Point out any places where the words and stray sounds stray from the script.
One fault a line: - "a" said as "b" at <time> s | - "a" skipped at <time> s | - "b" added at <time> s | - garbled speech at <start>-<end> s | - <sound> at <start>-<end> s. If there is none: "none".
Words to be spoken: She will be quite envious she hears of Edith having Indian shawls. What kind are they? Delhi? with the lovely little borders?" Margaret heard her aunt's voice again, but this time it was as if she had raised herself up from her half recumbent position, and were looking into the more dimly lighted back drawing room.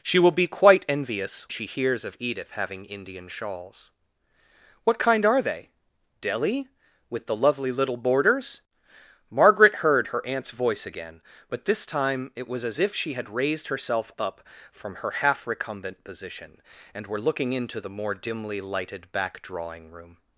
none